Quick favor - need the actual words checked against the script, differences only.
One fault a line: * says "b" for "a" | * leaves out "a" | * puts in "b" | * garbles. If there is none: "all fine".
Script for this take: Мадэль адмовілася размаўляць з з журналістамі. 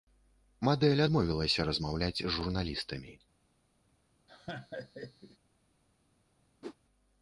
* leaves out "з"